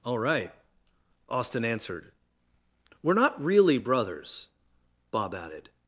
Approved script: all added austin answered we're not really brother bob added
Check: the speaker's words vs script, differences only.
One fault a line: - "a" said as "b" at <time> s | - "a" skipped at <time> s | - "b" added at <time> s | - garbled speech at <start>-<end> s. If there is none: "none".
- "added" said as "right" at 0.2 s
- "brother" said as "brothers" at 3.7 s